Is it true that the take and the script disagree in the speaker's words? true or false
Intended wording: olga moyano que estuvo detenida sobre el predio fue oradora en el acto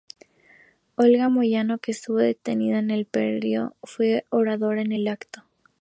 true